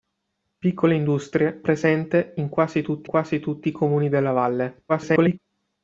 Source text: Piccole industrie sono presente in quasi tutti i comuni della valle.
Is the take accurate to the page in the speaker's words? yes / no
no